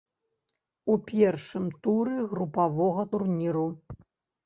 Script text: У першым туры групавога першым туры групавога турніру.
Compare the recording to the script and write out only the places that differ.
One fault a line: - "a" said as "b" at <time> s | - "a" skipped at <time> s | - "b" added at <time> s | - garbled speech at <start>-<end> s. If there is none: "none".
- "першым туры групавога" skipped at 3.0 s